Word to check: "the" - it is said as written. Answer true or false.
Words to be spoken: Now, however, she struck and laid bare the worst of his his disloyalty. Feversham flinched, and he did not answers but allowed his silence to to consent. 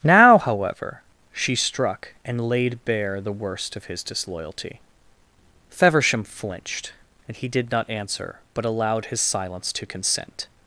true